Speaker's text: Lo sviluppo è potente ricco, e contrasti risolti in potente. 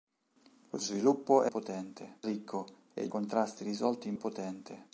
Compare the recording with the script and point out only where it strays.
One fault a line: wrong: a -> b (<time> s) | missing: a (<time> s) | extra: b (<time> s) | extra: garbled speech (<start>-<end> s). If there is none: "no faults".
no faults